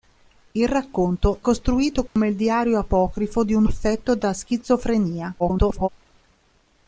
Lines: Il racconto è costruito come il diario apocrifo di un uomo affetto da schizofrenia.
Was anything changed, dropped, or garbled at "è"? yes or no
yes